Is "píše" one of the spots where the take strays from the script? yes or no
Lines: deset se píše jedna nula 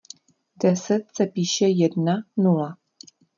no